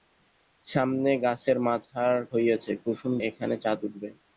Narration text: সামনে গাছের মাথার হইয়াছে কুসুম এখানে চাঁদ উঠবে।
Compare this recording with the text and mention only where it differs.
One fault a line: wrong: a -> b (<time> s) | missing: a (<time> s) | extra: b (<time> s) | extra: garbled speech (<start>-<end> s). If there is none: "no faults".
no faults